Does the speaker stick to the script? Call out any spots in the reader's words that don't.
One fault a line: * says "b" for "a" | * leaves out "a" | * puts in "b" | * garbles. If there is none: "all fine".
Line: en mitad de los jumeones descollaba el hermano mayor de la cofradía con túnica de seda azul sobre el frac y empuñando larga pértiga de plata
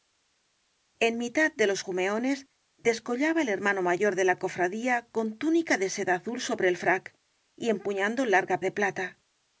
* leaves out "pértiga"